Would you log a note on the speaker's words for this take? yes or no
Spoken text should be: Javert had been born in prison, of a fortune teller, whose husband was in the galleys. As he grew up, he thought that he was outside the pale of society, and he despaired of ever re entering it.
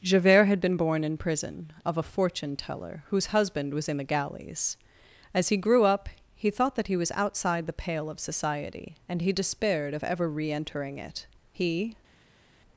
yes